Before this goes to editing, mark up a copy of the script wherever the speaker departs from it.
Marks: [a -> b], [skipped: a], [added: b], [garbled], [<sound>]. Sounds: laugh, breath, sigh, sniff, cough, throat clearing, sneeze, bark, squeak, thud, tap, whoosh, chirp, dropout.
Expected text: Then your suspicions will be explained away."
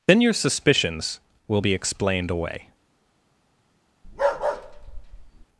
Then your suspicions will be explained away." [bark]